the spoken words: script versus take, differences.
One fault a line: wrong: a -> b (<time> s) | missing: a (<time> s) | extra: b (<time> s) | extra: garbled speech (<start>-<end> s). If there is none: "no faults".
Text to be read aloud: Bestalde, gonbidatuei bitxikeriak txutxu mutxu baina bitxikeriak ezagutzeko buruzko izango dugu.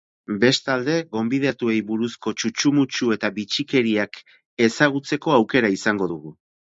wrong: bitxikeriak -> buruzko (1.9 s)
wrong: baina -> eta (3.2 s)
wrong: buruzko -> aukera (5.4 s)